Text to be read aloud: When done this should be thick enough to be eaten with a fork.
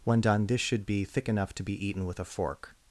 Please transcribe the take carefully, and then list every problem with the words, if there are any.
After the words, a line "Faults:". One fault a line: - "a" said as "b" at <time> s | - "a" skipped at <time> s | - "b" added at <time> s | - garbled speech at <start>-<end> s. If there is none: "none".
When done this should be thick enough to be eaten with a fork.
Faults:
none